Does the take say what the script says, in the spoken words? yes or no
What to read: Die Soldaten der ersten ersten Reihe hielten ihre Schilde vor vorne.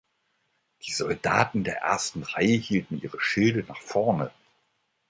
no